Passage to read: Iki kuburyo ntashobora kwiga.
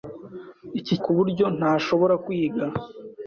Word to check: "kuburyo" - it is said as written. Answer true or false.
true